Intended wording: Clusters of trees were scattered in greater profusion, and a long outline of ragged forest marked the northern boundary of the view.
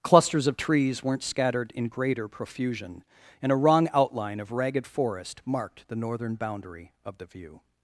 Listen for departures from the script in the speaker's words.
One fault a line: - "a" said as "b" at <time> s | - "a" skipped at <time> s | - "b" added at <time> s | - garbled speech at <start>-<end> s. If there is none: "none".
- "were" said as "weren't" at 1.0 s
- "long" said as "wrong" at 3.5 s